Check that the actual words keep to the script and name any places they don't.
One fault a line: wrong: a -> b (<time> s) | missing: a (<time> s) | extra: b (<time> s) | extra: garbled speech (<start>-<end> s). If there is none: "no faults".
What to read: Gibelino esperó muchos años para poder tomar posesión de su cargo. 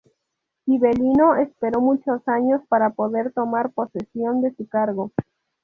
no faults